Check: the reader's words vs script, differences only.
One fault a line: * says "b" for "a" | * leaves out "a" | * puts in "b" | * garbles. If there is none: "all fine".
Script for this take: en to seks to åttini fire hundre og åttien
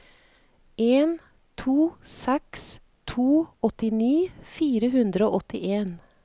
all fine